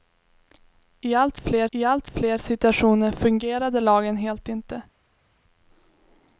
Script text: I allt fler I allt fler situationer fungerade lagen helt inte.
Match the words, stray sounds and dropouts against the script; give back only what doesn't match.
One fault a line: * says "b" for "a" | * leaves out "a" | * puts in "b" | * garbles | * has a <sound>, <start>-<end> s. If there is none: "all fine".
all fine